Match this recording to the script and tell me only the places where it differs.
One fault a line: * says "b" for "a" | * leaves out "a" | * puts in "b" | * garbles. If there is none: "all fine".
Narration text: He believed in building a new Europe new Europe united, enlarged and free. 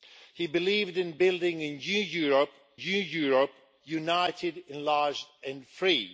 all fine